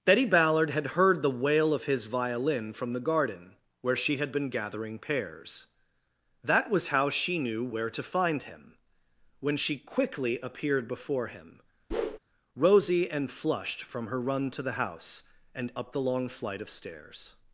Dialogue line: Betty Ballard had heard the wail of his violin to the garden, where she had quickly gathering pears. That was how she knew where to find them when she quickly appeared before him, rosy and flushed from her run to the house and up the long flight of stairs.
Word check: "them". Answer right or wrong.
wrong